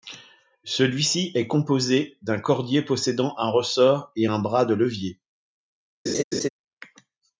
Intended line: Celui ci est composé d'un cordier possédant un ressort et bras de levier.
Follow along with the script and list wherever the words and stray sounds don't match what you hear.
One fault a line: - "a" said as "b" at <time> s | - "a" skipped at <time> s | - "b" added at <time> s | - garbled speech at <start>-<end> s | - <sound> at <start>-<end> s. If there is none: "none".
- "un" added at 4.3 s
- laugh at 6.1-6.5 s